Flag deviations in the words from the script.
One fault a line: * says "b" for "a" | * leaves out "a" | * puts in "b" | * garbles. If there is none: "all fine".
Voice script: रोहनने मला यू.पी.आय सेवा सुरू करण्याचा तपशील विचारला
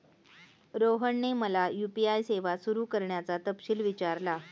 all fine